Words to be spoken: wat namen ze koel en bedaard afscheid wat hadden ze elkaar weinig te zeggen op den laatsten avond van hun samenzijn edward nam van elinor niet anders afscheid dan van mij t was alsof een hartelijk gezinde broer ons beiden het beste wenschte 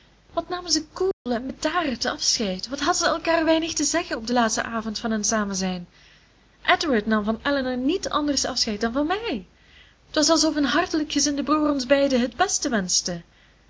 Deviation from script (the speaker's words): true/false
false